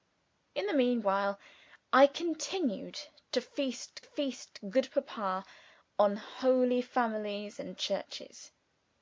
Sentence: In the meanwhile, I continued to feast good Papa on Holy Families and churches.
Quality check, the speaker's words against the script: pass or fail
fail